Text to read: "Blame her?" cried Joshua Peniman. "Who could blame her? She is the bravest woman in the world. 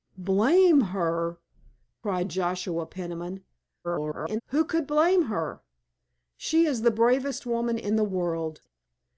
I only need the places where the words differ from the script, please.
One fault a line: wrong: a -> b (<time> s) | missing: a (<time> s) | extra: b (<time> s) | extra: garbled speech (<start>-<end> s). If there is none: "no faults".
extra: garbled speech (3.8-4.4 s)